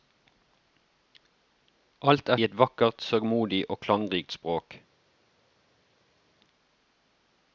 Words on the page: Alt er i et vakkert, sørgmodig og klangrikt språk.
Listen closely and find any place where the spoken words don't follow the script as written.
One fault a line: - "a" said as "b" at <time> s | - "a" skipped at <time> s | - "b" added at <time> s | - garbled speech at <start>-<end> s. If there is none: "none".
none